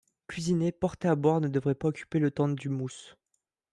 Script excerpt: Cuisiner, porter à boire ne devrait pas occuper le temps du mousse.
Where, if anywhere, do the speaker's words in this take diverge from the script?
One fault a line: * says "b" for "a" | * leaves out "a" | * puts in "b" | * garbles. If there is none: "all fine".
all fine